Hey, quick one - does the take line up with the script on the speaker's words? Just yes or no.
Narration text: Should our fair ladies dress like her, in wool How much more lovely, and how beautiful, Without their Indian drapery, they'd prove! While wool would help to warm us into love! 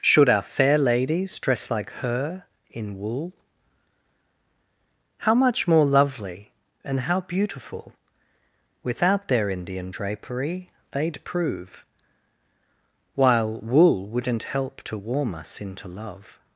no